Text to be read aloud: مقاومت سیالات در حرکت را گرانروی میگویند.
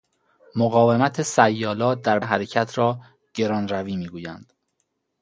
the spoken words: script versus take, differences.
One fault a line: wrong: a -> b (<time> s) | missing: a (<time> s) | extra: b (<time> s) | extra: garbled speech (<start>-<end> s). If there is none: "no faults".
no faults